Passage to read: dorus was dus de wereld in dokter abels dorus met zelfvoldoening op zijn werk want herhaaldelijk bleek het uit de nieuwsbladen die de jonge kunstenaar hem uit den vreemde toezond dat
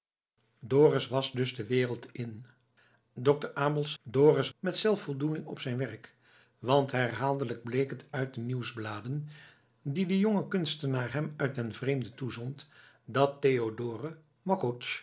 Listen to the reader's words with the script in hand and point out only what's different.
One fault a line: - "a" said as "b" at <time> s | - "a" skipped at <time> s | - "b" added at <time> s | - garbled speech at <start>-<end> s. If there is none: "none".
none